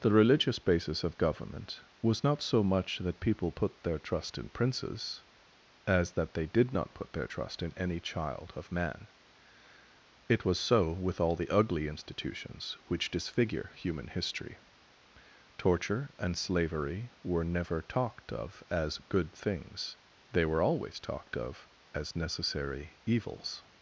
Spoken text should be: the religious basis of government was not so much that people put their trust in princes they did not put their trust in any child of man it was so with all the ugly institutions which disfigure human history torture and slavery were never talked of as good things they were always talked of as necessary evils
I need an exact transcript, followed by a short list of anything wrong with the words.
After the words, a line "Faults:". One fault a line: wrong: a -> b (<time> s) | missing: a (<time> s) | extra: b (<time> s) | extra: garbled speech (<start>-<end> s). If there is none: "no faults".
the religious basis of government was not so much that people put their trust in princes as that they did not put their trust in any child of man it was so with all the ugly institutions which disfigure human history torture and slavery were never talked of as good things they were always talked of as necessary evils
Faults:
extra: as that (5.9 s)